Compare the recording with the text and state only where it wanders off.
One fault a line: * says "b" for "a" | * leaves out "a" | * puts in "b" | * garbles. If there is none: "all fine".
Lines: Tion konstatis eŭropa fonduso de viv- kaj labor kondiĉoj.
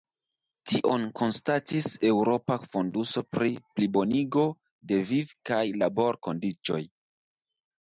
* puts in "pri plibonigo"